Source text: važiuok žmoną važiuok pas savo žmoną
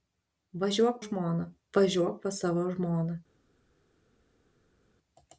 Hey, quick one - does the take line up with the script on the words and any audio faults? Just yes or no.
yes